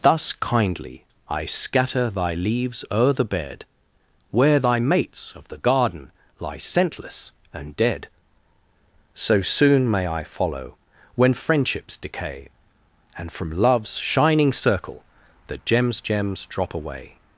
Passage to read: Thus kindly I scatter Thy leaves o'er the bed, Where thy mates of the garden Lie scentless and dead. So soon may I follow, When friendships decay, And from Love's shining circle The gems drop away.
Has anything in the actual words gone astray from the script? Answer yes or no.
yes